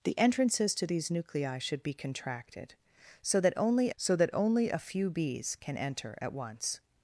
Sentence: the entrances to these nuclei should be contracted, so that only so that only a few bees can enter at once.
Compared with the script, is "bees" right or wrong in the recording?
right